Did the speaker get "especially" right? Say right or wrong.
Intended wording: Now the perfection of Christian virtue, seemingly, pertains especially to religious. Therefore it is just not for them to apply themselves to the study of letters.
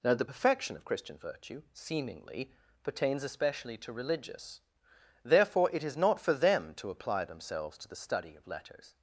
right